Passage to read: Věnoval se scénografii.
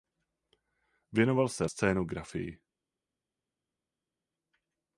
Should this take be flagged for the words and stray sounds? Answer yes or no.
no